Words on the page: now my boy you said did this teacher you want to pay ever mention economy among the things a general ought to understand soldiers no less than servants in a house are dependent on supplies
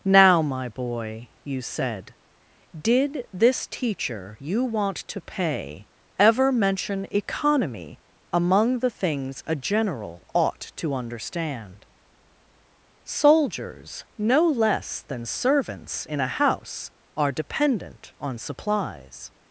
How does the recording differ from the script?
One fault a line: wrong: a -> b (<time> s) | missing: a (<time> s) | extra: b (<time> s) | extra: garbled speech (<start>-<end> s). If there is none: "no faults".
no faults